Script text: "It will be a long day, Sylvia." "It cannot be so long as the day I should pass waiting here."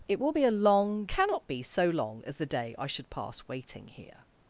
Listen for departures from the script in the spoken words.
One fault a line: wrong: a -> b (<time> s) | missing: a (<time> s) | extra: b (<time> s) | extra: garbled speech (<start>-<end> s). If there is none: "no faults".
missing: day Sylvia It (1.1 s)